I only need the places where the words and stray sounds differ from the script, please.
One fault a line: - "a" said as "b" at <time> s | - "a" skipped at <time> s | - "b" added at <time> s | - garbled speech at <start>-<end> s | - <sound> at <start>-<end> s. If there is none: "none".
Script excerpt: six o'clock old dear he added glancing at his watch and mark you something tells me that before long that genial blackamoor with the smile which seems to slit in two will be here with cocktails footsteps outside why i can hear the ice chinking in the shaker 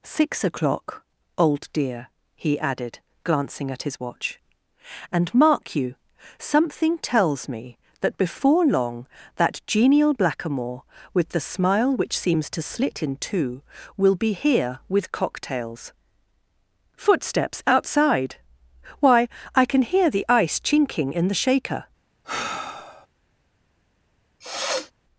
- sigh at 22.2-23.1 s
- sniff at 24.4-24.9 s